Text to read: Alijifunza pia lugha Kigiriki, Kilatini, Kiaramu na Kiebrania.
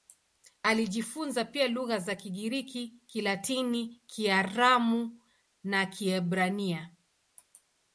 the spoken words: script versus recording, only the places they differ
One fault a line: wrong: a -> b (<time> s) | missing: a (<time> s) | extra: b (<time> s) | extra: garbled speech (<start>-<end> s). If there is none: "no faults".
extra: za (2.0 s)